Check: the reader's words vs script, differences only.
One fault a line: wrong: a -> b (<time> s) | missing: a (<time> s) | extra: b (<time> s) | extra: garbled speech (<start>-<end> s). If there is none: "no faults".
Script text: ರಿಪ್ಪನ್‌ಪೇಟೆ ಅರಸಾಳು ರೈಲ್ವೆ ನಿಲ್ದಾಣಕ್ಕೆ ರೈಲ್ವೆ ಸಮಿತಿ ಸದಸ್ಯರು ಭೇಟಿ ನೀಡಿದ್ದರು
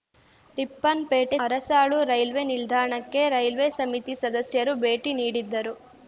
no faults